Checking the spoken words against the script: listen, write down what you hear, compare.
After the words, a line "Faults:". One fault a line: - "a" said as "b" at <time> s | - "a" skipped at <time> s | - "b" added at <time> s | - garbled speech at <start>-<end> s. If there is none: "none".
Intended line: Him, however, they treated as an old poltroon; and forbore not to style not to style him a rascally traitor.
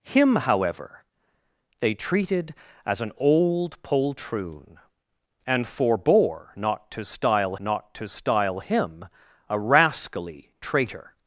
Him, however, they treated as an old poltroon; and forbore not to style not to style him a rascally traitor.
Faults:
none